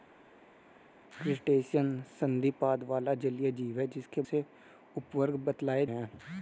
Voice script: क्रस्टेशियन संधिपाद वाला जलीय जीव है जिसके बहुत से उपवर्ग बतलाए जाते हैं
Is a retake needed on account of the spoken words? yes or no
yes